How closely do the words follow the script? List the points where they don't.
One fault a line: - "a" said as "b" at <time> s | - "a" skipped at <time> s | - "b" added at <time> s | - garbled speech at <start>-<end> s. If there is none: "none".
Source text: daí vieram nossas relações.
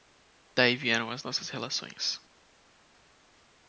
- "as" added at 1.1 s